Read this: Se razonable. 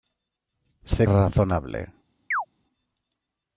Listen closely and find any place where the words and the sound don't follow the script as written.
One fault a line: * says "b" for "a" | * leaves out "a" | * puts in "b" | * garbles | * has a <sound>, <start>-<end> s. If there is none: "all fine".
* has a chirp, 2.3-2.5 s